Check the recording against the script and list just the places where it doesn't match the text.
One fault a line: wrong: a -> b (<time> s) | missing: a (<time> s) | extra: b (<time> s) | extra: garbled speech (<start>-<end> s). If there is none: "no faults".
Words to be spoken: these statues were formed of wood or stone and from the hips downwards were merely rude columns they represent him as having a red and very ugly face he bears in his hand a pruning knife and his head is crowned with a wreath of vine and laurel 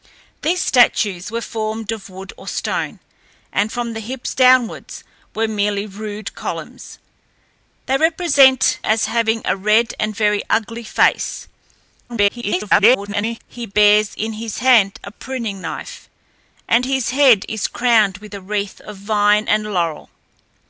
missing: him (8.8 s)
extra: garbled speech (12.1-13.4 s)